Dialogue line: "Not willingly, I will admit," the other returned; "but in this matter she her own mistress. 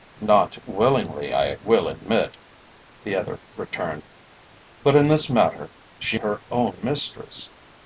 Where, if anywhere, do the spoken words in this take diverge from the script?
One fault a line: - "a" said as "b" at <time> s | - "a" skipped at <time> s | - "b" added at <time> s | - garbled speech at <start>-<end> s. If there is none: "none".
none